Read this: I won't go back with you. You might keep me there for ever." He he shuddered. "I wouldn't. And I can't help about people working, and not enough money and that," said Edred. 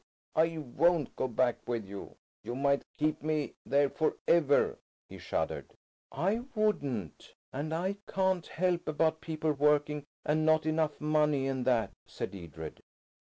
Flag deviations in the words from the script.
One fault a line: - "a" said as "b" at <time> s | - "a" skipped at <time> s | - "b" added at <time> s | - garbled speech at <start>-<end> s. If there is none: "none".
- "he" skipped at 5.2 s